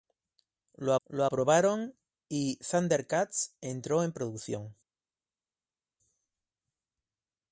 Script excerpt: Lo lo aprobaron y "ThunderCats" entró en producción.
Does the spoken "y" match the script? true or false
true